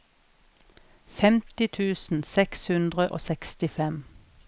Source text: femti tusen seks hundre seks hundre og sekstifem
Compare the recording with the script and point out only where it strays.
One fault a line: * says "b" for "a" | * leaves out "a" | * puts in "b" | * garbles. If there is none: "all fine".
* leaves out "seks hundre"